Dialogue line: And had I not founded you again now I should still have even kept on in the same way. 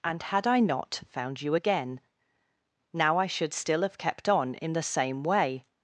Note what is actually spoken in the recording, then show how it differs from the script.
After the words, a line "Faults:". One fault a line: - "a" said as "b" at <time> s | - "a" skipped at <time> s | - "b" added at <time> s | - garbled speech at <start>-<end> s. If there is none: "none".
And had I not found you again now I should still have kept on in the same way.
Faults:
- "founded" said as "found" at 1.1 s
- "even" skipped at 4.0 s